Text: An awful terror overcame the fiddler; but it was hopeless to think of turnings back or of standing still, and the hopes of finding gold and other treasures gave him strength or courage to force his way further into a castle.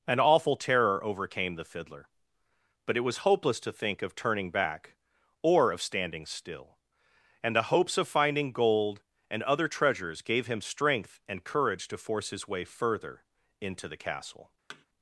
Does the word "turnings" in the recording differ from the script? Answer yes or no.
yes